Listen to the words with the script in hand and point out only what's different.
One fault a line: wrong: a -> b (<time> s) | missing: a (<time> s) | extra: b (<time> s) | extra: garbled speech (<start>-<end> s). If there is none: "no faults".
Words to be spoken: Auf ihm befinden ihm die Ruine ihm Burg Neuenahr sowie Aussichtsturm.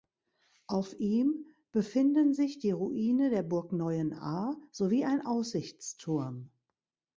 wrong: ihm -> sich (2.3 s)
wrong: ihm -> der (3.3 s)
extra: ein (5.0 s)